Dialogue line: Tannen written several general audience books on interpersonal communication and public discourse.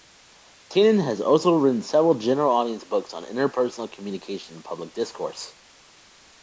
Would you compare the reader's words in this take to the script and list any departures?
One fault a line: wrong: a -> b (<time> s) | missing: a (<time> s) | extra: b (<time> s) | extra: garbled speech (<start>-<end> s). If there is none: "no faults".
extra: has also (1.1 s)